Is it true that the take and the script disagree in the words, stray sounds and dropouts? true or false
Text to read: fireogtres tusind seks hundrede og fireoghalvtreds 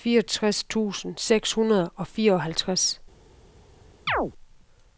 true